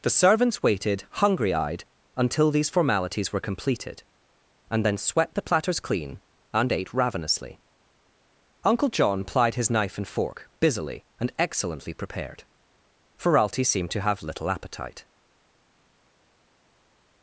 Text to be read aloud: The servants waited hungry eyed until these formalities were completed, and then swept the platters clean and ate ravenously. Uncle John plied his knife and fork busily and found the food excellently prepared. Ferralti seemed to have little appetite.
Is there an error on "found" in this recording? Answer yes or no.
yes